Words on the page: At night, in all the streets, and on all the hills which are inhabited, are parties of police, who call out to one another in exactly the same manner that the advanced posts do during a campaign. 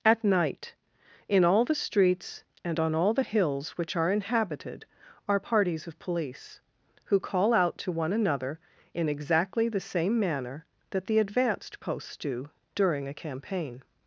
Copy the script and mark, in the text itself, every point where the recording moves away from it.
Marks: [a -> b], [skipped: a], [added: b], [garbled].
At night, in all the streets, and on all the hills which are inhabited, are parties of police, who call out to one another in exactly the same manner that the advanced posts do during a campaign.